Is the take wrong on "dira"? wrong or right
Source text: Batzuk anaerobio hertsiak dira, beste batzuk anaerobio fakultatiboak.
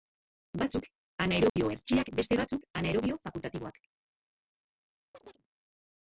wrong